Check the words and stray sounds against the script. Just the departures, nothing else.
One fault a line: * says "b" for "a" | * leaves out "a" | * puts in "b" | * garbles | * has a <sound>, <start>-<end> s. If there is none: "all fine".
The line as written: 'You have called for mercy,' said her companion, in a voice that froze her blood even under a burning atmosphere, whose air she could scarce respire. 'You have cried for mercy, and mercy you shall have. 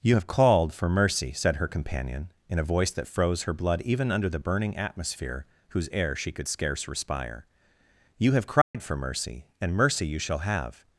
* says "the" for "a"
* has a dropout, 8.6-8.7 s